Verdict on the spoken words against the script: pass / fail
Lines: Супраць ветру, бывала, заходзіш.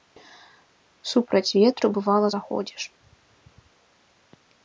pass